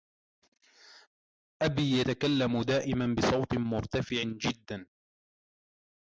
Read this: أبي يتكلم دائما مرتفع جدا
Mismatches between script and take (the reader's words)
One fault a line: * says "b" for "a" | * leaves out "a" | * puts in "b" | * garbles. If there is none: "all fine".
* puts in "بصوت"